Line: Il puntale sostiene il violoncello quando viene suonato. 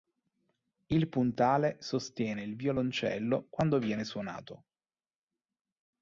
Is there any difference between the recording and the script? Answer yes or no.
no